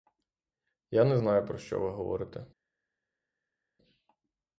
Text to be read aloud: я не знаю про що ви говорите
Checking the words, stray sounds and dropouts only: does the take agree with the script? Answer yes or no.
yes